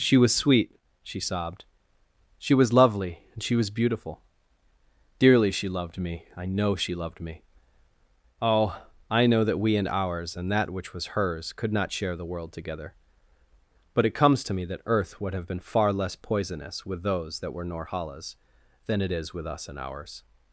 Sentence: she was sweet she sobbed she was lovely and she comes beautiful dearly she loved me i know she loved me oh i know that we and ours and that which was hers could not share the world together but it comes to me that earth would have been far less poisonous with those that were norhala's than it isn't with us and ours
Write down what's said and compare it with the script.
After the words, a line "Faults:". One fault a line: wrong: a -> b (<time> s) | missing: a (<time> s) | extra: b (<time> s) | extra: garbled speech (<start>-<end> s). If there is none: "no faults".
she was sweet she sobbed she was lovely and she was beautiful dearly she loved me i know she loved me oh i know that we and ours and that which was hers could not share the world together but it comes to me that earth would have been far less poisonous with those that were norhala's than it is with us and ours
Faults:
wrong: comes -> was (3.5 s)
wrong: isn't -> is (19.1 s)